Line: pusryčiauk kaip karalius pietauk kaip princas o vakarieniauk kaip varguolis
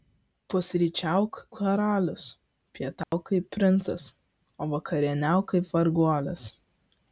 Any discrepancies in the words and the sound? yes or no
yes